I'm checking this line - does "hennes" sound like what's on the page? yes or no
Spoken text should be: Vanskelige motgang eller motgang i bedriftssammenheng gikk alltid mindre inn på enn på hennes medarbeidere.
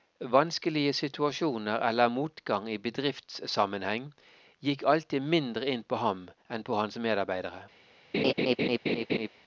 no